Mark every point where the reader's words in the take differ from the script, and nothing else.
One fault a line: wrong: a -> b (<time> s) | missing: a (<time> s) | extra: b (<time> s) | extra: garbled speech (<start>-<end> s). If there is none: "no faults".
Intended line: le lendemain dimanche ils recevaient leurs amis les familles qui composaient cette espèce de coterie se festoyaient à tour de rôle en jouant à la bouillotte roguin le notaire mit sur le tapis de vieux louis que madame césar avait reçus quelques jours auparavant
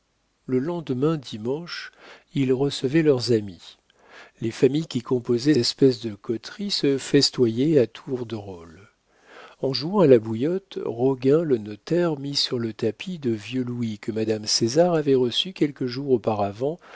missing: cette (5.5 s)